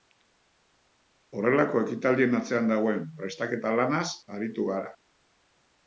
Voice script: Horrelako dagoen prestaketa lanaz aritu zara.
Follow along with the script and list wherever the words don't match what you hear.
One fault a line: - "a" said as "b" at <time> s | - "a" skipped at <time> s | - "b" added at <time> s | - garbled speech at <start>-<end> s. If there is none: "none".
- "ekitaldien atzean" added at 1.9 s
- "zara" said as "gara" at 4.8 s